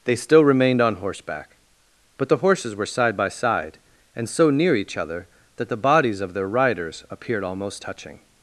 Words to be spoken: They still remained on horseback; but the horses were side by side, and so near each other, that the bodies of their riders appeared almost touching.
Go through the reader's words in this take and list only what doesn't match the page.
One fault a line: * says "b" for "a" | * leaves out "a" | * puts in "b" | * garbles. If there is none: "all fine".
all fine